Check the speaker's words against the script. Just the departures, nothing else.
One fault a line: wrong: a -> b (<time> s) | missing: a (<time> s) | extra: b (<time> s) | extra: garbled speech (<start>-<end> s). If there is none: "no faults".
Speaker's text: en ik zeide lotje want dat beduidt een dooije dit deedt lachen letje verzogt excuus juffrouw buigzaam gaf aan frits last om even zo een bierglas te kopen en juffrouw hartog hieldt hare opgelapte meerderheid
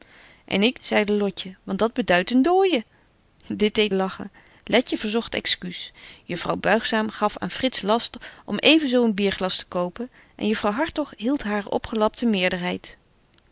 no faults